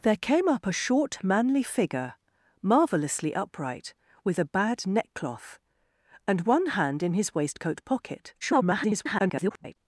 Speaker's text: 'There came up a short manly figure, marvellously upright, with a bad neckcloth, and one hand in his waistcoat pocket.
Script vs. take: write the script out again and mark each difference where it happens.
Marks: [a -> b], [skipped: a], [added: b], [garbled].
'There came up a short manly figure, marvellously upright, with a bad neckcloth, and one hand in his waistcoat pocket. [garbled]